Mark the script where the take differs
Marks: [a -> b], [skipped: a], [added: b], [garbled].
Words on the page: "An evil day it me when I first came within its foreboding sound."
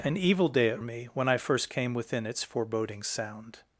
"An evil day it me when I first came within its foreboding sound."